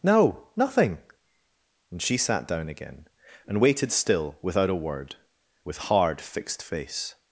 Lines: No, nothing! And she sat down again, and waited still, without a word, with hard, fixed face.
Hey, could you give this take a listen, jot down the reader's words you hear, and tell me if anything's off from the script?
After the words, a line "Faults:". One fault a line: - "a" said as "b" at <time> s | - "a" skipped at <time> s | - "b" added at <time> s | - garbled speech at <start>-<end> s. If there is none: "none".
No, nothing! And she sat down again, and waited still, without a word, with hard, fixed face.
Faults:
none